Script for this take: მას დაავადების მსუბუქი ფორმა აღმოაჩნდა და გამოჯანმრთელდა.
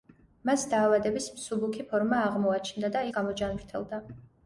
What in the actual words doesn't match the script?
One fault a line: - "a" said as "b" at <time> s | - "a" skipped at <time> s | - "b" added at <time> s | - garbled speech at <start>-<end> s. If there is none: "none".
none